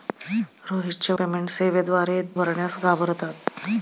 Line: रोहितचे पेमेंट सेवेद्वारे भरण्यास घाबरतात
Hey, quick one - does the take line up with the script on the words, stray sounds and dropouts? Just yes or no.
yes